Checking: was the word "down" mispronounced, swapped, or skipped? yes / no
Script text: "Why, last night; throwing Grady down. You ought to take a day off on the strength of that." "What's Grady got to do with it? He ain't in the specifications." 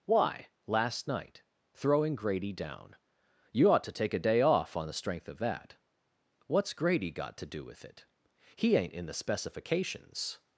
no